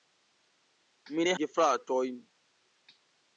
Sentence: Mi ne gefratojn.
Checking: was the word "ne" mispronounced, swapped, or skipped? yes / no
no